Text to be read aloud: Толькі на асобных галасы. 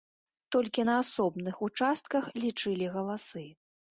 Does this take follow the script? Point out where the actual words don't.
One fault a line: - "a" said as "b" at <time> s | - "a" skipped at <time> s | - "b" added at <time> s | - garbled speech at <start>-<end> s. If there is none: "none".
- "участках лічылі" added at 1.7 s